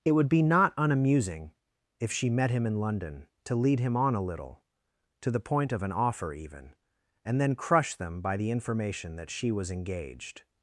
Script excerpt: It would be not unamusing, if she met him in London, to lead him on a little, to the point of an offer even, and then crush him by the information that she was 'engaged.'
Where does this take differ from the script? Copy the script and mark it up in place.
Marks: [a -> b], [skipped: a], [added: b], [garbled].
It would be not unamusing, if she met him in London, to lead him on a little, to the point of an offer even, and then crush [him -> them] by the information that she was 'engaged.'